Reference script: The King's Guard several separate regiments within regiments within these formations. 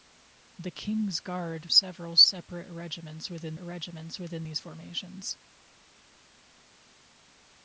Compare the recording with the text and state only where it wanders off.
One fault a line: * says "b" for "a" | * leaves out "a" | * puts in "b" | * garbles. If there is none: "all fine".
all fine